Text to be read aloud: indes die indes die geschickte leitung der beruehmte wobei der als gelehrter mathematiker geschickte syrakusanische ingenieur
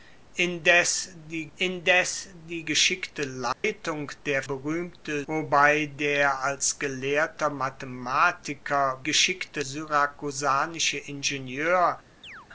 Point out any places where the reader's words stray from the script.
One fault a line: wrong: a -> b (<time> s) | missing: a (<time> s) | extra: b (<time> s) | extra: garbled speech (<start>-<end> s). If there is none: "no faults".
no faults